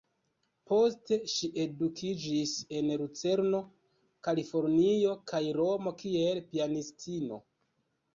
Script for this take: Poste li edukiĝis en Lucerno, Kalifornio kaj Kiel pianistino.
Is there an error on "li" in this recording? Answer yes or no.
yes